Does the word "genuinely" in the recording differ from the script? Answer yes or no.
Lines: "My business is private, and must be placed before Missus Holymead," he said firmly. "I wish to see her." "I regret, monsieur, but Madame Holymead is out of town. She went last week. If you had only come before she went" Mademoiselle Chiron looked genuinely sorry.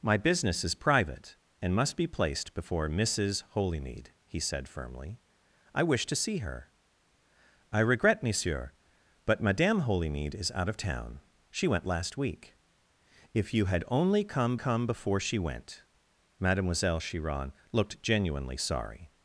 no